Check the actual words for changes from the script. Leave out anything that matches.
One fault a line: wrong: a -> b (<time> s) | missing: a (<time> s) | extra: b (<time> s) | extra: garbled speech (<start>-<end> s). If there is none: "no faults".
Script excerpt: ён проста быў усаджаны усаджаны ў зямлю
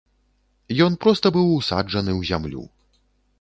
missing: усаджаны (2.1 s)